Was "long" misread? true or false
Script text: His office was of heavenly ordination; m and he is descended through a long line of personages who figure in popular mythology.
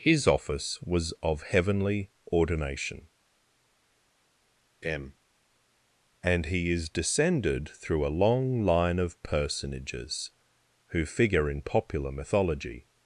false